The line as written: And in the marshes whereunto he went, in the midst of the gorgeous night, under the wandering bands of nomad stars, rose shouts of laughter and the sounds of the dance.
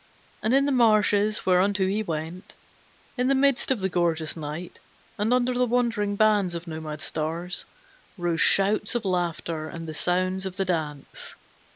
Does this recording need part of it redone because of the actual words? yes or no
yes